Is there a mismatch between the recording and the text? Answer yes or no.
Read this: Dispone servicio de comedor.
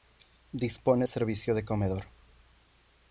no